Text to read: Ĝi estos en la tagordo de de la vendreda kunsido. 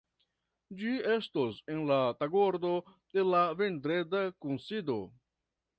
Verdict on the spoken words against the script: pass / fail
fail